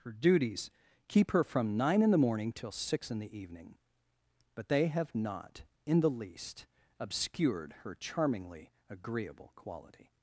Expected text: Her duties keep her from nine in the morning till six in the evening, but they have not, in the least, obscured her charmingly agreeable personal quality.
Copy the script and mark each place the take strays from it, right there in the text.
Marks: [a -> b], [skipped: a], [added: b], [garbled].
Her duties keep her from nine in the morning till six in the evening, but they have not, in the least, obscured her charmingly agreeable [skipped: personal] quality.